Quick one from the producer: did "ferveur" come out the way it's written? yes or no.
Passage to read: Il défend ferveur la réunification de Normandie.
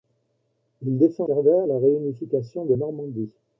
yes